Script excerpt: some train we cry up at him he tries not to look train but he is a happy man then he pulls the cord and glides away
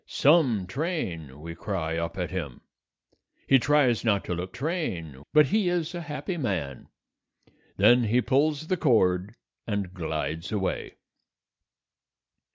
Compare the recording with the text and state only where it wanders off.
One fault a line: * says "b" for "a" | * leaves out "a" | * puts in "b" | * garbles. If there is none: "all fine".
all fine